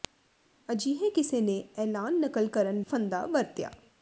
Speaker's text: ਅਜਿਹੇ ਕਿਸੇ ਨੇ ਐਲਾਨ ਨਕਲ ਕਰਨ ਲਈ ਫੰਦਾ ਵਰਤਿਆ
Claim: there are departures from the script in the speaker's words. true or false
true